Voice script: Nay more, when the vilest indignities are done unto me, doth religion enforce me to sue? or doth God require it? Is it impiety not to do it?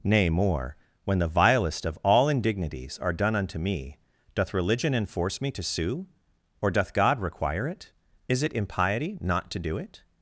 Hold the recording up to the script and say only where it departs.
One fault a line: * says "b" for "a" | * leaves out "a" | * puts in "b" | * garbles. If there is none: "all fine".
* puts in "of all"